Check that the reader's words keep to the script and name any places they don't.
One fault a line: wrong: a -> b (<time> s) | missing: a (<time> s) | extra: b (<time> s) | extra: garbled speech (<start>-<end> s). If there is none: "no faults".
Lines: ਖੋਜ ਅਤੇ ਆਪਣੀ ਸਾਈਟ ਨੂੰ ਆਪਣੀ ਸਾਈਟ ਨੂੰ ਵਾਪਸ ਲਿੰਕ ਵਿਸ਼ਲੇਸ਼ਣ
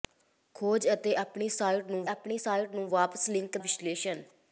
no faults